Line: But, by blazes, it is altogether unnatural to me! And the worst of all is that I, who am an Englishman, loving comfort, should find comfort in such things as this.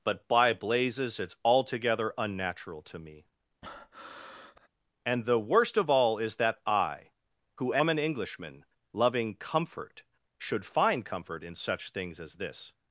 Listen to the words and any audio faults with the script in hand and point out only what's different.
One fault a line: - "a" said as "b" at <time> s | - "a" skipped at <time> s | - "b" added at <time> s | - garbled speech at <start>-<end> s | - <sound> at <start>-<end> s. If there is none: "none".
- breath at 3.6-4.7 s